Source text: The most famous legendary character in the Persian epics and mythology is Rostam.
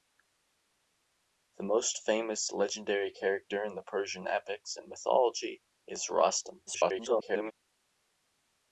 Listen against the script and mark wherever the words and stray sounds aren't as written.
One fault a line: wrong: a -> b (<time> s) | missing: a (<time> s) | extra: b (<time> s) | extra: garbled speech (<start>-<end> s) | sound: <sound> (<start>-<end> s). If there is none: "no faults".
extra: garbled speech (6.7-7.5 s)